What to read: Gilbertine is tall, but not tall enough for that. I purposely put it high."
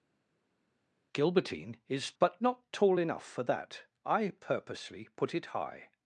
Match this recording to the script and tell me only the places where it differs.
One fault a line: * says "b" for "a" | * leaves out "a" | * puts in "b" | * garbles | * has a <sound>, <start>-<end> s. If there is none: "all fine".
* leaves out "tall"